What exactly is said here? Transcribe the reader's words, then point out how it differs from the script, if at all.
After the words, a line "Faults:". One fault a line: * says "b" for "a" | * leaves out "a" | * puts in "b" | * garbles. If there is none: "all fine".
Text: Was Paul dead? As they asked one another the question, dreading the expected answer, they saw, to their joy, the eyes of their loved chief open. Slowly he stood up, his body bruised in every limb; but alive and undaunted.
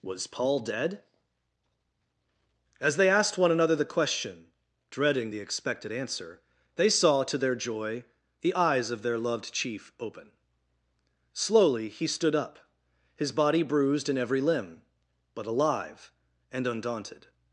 Was Paul dead? As they asked one another the question, dreading the expected answer, they saw, to their joy, the eyes of their loved chief open. Slowly he stood up, his body bruised in every limb; but alive and undaunted.
Faults:
all fine